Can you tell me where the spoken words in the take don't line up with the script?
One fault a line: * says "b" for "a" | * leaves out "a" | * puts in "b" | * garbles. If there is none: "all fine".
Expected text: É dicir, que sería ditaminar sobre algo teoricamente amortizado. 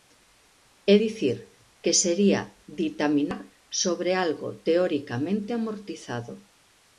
all fine